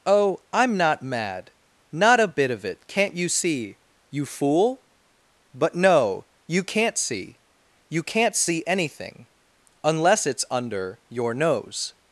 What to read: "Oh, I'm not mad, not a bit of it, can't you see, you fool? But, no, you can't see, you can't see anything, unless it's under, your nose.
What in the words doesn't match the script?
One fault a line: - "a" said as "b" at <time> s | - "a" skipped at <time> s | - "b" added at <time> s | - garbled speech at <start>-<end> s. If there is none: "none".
none